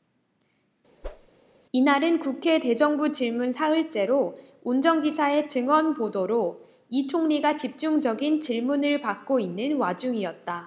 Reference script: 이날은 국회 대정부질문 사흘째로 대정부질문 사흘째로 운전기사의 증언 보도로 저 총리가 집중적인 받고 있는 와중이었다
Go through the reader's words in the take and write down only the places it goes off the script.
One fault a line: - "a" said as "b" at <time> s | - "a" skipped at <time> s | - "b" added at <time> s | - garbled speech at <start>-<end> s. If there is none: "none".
- "대정부질문 사흘째로" skipped at 4.4 s
- "저" said as "이" at 6.9 s
- "질문을" added at 8.4 s